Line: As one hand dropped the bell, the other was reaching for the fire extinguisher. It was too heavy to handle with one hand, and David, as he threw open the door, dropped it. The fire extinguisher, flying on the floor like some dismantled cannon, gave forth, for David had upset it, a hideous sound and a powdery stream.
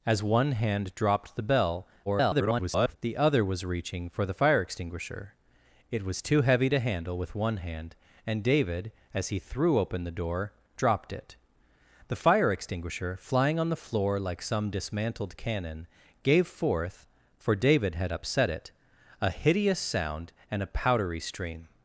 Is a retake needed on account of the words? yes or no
yes